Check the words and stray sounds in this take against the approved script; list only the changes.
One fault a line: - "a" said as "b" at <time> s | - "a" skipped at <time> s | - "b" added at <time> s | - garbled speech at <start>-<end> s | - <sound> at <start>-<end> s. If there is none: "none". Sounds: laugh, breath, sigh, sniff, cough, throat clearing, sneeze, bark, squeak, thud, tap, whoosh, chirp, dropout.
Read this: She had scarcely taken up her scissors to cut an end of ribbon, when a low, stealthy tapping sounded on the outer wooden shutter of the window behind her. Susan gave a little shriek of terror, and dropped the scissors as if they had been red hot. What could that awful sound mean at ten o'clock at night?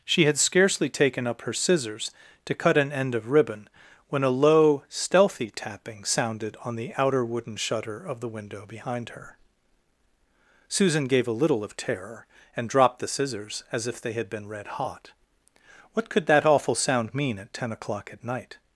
- "shriek" skipped at 11.6 s